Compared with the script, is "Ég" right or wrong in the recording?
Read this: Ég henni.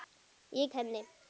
right